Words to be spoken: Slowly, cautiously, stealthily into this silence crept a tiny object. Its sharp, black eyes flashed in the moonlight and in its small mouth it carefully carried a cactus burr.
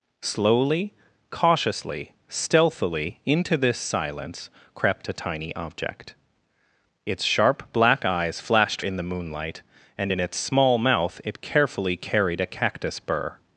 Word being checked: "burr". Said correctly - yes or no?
yes